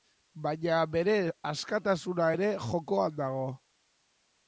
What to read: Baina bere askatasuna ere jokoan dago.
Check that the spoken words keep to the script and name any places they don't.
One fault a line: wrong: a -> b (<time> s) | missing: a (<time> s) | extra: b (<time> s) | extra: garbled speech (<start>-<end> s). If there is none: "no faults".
no faults